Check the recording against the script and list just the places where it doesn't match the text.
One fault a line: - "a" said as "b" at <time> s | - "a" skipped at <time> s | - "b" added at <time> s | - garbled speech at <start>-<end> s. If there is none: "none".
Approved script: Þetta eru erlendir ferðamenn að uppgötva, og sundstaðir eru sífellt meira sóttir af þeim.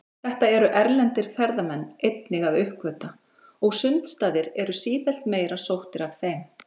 - "einnig" added at 2.1 s